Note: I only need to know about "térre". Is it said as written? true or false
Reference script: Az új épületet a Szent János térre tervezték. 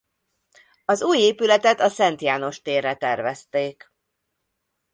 true